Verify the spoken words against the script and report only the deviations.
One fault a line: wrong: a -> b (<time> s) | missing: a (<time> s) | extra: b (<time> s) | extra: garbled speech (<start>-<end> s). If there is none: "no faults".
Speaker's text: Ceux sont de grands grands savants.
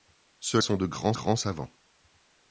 no faults